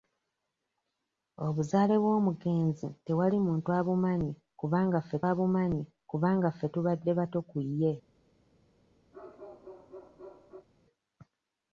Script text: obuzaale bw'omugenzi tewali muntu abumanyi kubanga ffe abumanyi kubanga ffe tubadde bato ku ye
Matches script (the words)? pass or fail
pass